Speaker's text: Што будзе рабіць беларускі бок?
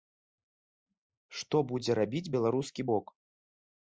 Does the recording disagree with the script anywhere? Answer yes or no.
no